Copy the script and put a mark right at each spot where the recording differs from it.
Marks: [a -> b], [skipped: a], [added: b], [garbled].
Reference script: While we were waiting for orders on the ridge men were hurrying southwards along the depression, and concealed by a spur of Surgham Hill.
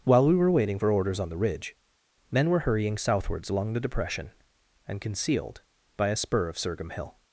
While we were waiting for orders on the ridge men were hurrying southwards along the depression, and concealed by a spur of Surgham Hill.